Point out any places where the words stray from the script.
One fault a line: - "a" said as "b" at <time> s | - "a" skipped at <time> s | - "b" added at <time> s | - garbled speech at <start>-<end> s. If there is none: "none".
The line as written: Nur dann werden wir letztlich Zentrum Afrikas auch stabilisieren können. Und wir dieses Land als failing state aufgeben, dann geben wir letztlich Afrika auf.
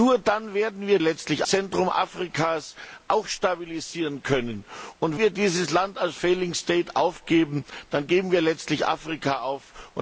none